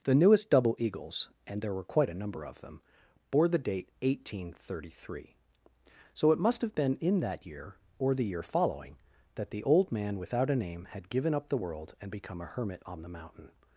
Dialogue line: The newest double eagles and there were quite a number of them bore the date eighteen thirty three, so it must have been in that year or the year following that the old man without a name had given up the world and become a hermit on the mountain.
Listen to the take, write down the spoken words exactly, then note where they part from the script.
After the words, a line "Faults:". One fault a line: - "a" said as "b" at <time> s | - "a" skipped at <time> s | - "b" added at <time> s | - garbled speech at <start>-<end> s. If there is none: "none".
The newest double eagles and there were quite a number of them bore the date eighteen thirty three, so it must have been in that year or the year following that the old man without a name had given up the world and become a hermit on the mountain.
Faults:
none